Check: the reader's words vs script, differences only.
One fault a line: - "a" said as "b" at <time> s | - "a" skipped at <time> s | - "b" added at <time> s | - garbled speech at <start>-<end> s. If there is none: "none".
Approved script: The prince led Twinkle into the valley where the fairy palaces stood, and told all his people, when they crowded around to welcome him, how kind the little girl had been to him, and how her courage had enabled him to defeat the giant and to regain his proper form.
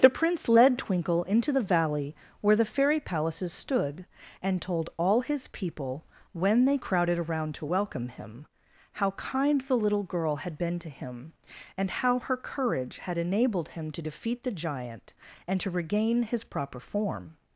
none